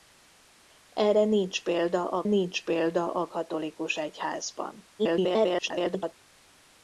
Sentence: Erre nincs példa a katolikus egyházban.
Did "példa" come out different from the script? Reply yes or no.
no